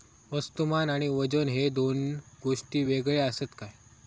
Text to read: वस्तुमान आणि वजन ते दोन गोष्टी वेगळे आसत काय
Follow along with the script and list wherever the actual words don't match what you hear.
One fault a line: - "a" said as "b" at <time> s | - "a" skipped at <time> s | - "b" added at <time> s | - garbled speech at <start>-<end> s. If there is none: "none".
- "ते" said as "हे" at 1.5 s